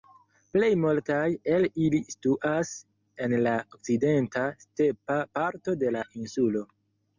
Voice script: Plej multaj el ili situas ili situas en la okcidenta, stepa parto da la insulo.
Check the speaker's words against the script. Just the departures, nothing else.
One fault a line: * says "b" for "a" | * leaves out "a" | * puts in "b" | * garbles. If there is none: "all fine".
* leaves out "ili situas"
* says "de" for "da"